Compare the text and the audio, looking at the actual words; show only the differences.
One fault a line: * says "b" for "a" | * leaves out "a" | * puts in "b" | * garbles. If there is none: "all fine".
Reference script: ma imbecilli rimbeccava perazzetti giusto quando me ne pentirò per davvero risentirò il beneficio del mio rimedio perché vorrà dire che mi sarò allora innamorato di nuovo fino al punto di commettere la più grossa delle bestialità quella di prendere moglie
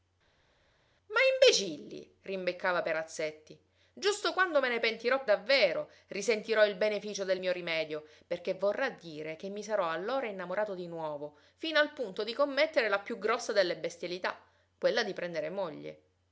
* leaves out "per"